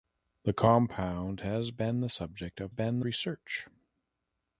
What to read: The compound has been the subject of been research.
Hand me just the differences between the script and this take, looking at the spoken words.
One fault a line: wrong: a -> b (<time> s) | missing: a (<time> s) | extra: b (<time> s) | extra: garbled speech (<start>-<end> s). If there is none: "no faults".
no faults